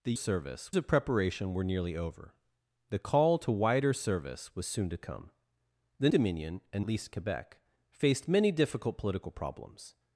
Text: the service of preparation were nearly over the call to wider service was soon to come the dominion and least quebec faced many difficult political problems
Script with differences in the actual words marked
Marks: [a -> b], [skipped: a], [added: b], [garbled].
the service of preparation were nearly over the call to wider service was soon to come the dominion and least quebec faced many difficult political problems